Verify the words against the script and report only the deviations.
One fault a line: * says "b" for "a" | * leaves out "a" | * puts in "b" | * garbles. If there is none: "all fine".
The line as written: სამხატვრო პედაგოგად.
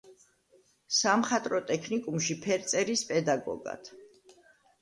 * puts in "ტექნიკუმში ფერწერის"